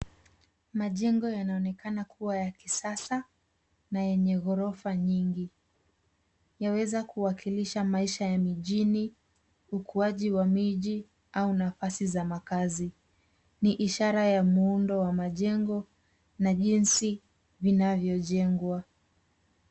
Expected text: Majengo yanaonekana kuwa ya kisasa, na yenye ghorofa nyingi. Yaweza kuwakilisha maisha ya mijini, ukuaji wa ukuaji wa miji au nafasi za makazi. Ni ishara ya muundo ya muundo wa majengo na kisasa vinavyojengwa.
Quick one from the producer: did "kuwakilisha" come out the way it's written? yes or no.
yes